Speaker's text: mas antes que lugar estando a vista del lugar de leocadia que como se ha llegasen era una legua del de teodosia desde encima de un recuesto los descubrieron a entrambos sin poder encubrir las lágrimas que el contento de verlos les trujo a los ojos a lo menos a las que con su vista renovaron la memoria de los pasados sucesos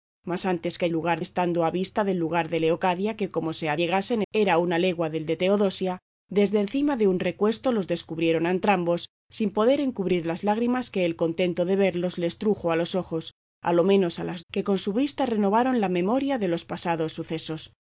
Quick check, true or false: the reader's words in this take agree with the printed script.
true